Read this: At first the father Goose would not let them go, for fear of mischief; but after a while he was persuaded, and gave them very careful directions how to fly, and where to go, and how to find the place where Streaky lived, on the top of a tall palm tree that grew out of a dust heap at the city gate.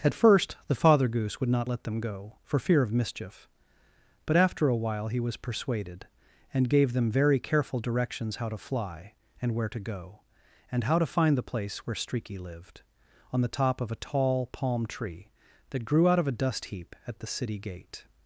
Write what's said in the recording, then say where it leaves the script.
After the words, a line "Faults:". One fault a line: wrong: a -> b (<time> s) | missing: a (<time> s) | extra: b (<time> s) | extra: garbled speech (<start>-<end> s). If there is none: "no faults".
At first the father Goose would not let them go, for fear of mischief; but after a while he was persuaded, and gave them very careful directions how to fly, and where to go, and how to find the place where Streaky lived, on the top of a tall palm tree that grew out of a dust heap at the city gate.
Faults:
no faults